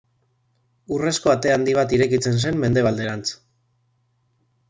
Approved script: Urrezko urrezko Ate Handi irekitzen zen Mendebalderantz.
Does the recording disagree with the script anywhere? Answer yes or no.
yes